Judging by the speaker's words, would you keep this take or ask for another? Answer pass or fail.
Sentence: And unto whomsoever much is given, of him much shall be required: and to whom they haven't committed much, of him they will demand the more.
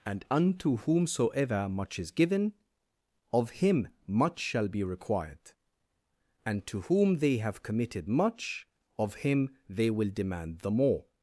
fail